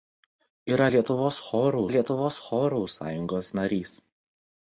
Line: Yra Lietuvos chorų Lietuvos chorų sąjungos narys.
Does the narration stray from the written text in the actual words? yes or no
no